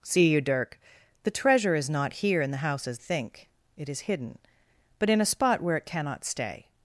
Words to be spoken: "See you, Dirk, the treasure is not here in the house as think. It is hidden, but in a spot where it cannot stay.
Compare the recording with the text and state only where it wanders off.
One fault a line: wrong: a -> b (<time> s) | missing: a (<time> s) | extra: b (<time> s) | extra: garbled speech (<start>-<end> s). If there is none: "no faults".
no faults